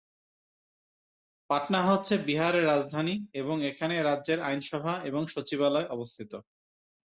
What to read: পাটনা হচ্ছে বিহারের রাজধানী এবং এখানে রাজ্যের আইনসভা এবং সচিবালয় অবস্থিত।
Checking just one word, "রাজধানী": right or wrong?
right